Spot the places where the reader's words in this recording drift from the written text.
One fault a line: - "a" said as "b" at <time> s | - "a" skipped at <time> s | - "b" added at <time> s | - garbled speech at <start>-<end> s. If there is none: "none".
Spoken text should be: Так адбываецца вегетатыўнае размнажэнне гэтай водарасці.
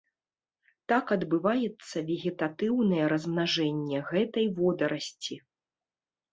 none